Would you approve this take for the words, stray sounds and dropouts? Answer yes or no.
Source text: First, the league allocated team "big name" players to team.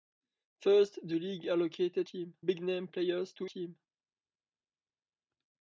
yes